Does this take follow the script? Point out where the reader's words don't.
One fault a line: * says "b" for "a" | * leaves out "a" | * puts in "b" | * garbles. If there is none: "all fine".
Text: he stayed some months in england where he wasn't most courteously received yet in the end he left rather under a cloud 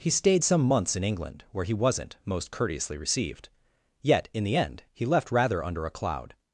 all fine